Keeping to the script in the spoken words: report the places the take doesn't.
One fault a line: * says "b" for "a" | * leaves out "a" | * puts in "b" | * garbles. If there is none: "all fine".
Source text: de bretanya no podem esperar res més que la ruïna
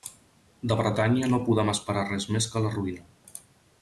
all fine